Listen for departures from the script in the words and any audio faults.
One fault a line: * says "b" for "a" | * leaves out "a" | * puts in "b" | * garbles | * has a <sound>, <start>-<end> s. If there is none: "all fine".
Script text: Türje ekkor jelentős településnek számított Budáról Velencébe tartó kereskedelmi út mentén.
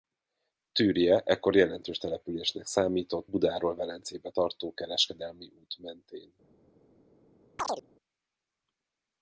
* has a chirp, 7.6-7.8 s